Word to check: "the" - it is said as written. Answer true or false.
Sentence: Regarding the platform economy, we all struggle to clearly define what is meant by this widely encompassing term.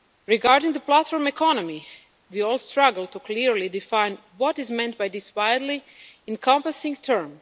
true